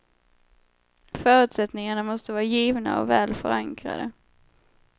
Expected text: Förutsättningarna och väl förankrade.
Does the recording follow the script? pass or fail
fail